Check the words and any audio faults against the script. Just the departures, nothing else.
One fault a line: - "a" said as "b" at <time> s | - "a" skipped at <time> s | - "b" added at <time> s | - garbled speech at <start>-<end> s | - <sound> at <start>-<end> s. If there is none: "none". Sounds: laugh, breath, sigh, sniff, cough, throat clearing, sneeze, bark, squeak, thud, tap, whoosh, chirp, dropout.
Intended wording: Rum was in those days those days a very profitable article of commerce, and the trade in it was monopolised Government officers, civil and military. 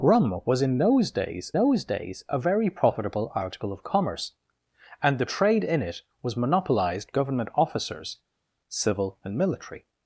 none